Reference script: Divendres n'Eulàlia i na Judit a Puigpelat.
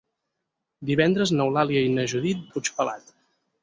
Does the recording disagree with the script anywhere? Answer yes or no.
no